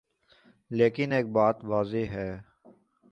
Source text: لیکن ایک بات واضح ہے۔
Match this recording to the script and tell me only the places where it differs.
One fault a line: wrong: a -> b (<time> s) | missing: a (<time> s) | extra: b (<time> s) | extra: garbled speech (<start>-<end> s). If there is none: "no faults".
no faults